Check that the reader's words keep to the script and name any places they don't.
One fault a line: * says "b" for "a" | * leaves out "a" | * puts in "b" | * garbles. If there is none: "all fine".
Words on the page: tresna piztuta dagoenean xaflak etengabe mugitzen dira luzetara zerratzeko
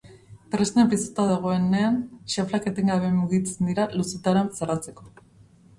all fine